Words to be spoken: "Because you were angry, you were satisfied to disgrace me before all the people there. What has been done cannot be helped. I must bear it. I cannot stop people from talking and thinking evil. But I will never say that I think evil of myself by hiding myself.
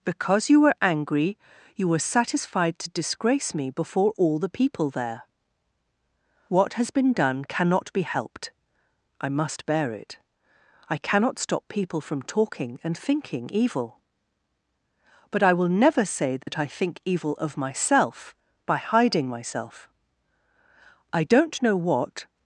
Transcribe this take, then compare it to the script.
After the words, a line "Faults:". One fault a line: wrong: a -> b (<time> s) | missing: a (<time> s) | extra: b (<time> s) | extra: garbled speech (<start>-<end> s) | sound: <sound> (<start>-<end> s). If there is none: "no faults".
"Because you were angry, you were satisfied to disgrace me before all the people there. What has been done cannot be helped. I must bear it. I cannot stop people from talking and thinking evil. But I will never say that I think evil of myself by hiding myself. I don't know what
Faults:
sound: dropout (16.4-16.5 s)
extra: I don't know what (21.1 s)